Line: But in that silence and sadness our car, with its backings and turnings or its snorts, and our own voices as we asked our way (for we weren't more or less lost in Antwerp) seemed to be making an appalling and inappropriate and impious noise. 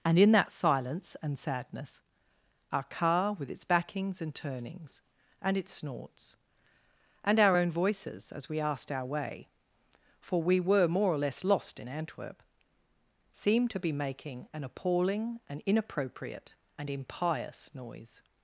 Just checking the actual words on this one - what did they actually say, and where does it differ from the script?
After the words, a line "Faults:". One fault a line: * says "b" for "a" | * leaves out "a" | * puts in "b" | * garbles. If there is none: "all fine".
And in that silence and sadness our car, with its backings and turnings and its snorts, and our own voices as we asked our way (for we were more or less lost in Antwerp) seemed to be making an appalling and inappropriate and impious noise.
Faults:
* says "And" for "But"
* says "and" for "or"
* says "were" for "weren't"